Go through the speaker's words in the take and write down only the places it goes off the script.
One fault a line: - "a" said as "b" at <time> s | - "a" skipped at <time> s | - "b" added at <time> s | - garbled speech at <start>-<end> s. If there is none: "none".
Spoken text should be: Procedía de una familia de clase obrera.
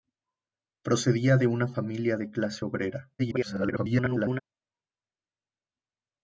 - garbled speech at 3.2-4.4 s